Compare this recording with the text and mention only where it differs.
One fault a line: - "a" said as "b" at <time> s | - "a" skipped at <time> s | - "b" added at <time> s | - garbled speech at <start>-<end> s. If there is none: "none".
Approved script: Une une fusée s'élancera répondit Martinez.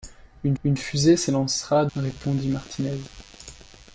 none